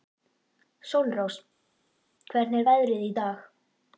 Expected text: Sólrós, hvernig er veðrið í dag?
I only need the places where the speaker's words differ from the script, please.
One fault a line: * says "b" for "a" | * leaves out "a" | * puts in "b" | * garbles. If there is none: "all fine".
all fine